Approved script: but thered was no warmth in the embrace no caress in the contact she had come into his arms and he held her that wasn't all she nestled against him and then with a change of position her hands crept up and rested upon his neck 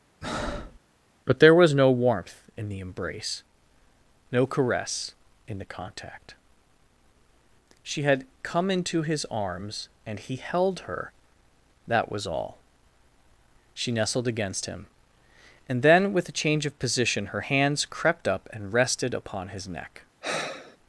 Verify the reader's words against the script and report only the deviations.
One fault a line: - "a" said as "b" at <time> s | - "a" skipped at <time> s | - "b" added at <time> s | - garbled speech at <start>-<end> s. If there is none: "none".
- "thered" said as "there" at 1.4 s
- "wasn't" said as "was" at 12.1 s